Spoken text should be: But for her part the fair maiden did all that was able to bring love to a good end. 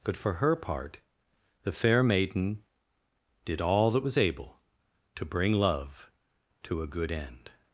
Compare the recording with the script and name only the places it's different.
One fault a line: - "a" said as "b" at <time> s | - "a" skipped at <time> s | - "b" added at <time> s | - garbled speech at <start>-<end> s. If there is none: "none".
none